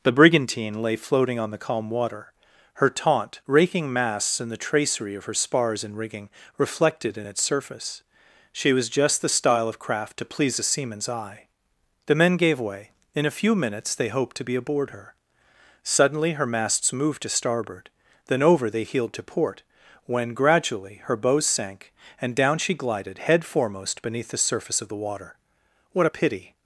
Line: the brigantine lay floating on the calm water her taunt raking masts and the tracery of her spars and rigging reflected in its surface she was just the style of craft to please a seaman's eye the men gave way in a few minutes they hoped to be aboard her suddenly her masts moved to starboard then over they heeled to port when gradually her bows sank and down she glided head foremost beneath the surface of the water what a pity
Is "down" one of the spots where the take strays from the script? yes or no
no